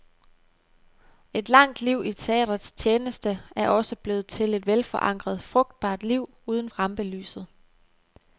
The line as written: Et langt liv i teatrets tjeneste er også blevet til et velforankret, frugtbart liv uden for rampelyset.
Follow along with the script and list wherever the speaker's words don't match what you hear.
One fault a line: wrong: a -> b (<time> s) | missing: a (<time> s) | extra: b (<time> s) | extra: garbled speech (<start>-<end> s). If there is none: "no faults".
missing: for (6.7 s)